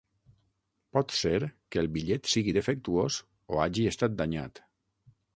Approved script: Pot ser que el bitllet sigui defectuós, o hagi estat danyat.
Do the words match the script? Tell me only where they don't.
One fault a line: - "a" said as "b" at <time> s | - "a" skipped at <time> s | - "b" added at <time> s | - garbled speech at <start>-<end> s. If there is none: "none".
none